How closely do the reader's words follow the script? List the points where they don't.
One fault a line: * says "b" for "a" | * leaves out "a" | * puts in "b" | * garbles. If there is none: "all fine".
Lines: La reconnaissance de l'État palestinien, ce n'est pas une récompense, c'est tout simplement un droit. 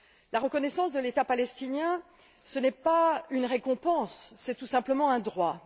all fine